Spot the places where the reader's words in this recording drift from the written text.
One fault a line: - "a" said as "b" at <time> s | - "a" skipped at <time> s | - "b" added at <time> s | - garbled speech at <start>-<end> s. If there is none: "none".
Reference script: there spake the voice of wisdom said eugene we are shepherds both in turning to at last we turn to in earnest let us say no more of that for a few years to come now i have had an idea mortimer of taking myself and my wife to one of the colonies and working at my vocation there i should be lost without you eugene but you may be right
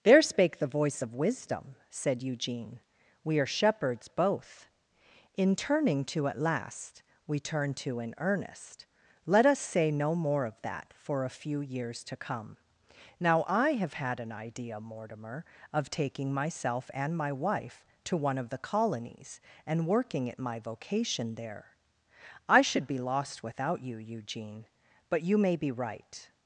none